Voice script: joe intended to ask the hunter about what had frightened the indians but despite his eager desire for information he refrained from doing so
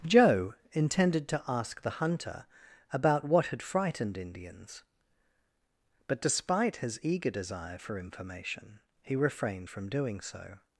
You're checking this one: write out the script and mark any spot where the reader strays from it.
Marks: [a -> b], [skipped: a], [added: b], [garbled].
joe intended to ask the hunter about what had frightened [skipped: the] indians but despite his eager desire for information he refrained from doing so